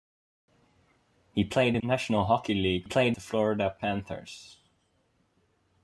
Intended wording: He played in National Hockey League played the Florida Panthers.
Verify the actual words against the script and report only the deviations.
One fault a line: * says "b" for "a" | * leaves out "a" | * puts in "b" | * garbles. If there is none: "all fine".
all fine